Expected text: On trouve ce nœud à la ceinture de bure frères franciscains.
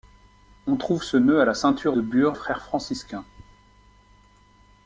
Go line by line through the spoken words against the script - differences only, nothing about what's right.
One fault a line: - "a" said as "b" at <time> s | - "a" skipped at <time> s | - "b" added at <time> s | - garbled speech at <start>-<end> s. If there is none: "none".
none